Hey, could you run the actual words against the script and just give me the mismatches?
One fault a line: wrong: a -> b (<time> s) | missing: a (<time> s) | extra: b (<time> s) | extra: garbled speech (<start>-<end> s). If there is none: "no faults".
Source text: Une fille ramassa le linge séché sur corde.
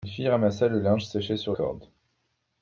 no faults